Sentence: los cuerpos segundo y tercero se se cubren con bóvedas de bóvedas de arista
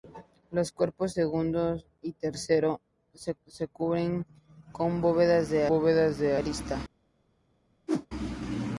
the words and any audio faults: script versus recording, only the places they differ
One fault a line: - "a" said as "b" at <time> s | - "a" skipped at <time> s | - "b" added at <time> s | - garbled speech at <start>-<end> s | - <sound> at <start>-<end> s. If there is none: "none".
- whoosh at 7.9-8.1 s